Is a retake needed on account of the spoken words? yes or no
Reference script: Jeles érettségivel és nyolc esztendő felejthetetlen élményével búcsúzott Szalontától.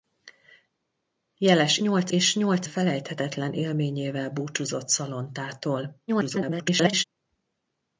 yes